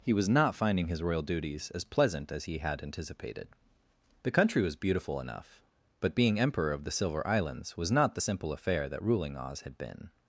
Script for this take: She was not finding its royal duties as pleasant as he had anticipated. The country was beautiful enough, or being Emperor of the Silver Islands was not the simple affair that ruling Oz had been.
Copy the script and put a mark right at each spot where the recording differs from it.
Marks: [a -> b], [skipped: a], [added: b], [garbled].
[She -> He] was not finding [its -> his] royal duties as pleasant as he had anticipated. The country was beautiful enough, [or -> but] being Emperor of the Silver Islands was not the simple affair that ruling Oz had been.